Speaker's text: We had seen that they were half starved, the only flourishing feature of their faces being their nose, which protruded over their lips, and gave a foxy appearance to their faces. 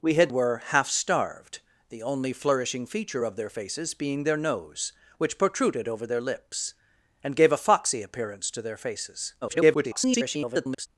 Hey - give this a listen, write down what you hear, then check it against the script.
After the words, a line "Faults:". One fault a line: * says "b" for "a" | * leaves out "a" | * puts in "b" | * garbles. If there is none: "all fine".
We had were half starved, the only flourishing feature of their faces being their nose, which protruded over their lips, and gave a foxy appearance to their faces. [garbled]
Faults:
* leaves out "seen that they"
* garbles